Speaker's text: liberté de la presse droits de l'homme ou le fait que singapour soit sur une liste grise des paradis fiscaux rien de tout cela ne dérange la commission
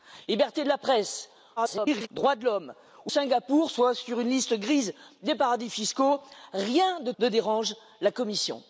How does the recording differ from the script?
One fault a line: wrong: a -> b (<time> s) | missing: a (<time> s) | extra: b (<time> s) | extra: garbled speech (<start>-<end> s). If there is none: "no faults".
extra: garbled speech (1.6-2.1 s)
missing: le fait que (3.1 s)
missing: tout cela (7.1 s)